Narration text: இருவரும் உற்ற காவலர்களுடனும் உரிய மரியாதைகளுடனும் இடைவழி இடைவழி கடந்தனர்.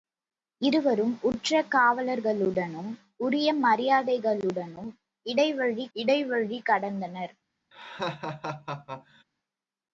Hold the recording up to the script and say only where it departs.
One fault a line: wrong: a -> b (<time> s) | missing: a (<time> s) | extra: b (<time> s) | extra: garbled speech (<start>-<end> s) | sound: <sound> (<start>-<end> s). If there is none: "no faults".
sound: laugh (7.7-9.2 s)